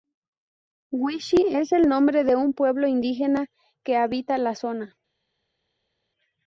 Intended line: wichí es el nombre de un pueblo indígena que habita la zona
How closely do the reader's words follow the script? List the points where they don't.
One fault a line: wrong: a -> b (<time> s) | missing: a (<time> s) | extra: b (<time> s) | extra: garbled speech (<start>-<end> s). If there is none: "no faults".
no faults